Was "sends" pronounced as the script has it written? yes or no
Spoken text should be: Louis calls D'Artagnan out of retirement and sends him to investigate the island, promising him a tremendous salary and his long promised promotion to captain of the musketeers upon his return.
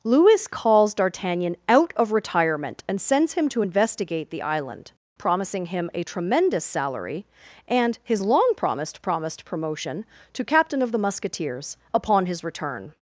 yes